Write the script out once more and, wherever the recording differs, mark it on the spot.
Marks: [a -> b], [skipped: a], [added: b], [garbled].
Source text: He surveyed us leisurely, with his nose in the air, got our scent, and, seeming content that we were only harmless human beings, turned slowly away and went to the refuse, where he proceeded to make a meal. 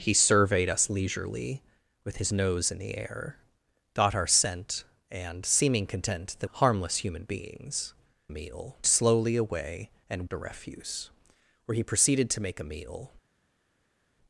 He surveyed us leisurely, with his nose in the air, got our scent, and, seeming content that [skipped: we were only] harmless human beings, [turned -> meal] slowly away and [skipped: went to] the refuse, where he proceeded to make a meal.